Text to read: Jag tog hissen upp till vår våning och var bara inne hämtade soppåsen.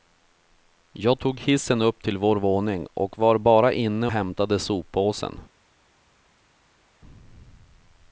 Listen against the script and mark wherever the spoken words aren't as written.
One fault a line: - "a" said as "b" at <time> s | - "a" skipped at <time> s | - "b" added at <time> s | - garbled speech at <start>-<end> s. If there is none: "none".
none